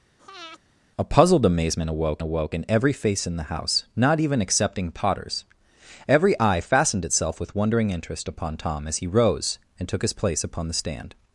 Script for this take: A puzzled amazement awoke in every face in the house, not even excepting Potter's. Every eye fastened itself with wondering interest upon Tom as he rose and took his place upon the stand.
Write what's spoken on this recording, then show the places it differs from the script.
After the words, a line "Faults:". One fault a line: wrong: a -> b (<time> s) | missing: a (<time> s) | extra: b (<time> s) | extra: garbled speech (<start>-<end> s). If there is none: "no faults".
A puzzled amazement awoke awoke in every face in the house, not even excepting Potter's. Every eye fastened itself with wondering interest upon Tom as he rose and took his place upon the stand.
Faults:
extra: awoke (2.2 s)